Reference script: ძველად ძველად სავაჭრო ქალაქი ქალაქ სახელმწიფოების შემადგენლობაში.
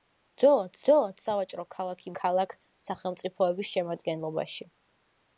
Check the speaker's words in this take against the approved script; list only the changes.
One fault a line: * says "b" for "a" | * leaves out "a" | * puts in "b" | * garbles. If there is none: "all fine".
all fine